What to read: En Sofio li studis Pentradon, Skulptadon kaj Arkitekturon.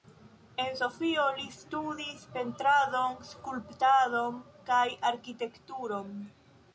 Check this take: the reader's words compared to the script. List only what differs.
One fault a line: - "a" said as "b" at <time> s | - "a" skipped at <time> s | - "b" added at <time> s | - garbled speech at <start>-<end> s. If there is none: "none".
none